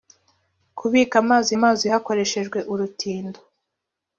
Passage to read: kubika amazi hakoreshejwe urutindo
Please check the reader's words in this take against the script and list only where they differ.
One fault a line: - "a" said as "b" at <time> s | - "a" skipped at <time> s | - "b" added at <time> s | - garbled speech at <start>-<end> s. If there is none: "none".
- "amazi" added at 1.6 s